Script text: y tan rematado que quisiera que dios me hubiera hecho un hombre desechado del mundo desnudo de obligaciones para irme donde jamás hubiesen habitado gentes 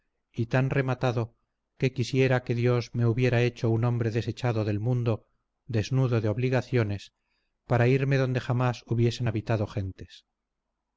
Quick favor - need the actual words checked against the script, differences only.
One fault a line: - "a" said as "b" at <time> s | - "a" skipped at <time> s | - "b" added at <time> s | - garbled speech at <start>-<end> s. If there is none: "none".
none